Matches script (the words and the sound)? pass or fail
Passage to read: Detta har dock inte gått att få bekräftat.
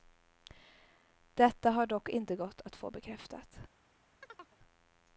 fail